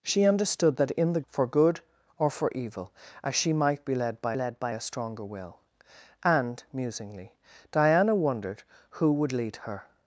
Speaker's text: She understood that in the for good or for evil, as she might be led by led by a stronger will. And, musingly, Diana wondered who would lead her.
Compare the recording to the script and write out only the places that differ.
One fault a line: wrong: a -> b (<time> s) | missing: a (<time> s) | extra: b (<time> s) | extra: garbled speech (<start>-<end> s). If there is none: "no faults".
no faults